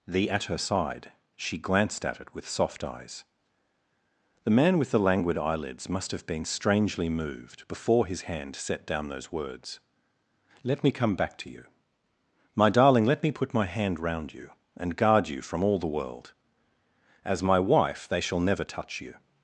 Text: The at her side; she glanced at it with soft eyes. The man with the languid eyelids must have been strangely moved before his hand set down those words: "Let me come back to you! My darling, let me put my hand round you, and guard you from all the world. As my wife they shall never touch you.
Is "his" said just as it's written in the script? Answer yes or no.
yes